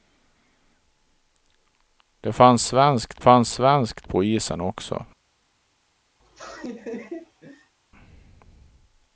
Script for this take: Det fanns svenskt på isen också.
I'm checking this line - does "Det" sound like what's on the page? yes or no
yes